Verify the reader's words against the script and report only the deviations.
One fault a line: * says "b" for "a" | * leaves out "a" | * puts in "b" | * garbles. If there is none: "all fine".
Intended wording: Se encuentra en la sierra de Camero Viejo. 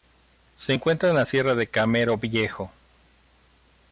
all fine